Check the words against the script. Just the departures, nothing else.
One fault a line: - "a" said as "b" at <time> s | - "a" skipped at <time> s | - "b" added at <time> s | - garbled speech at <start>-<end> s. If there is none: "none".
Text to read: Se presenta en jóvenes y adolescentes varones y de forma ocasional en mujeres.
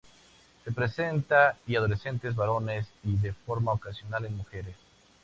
- "en jóvenes" skipped at 1.6 s